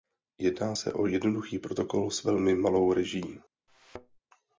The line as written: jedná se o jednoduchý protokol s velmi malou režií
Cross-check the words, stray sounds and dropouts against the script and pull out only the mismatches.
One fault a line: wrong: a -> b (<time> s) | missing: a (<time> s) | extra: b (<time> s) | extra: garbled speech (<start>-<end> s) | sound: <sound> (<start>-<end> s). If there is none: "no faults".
sound: thud (3.7-4.2 s)